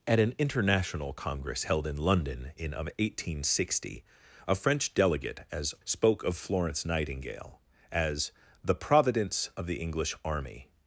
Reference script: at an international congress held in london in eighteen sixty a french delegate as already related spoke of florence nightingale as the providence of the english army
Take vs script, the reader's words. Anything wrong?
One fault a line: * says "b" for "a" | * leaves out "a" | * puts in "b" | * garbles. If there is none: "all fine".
* leaves out "already related"